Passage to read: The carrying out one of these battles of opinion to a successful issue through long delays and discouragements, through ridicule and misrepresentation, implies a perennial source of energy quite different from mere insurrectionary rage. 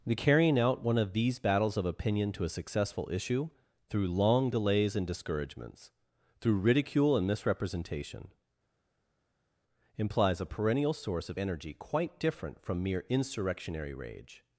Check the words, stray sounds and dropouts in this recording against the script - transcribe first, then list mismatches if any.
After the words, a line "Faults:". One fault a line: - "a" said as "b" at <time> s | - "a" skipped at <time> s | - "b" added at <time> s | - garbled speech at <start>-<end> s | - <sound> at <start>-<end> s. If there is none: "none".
The carrying out one of these battles of opinion to a successful issue through long delays and discouragements, through ridicule and misrepresentation, implies a perennial source of energy quite different from mere insurrectionary rage.
Faults:
none